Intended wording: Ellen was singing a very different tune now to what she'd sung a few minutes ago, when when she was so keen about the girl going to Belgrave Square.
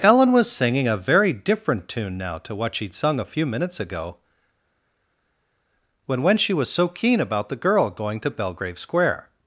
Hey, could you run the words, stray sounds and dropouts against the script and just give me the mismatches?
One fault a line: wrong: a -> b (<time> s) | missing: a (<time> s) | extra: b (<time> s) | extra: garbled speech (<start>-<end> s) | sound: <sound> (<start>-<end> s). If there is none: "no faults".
no faults